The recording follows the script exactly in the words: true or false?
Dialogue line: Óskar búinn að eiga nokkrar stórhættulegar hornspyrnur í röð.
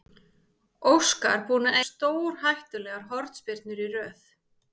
false